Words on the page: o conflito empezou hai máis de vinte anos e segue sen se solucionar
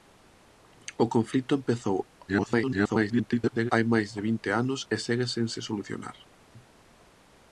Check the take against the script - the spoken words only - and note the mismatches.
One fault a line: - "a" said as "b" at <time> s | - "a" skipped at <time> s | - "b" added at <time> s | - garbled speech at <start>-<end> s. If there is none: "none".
- garbled speech at 2.3-3.7 s